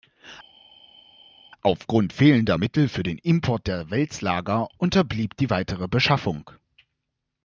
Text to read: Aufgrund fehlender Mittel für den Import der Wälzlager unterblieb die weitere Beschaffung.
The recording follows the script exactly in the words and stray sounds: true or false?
true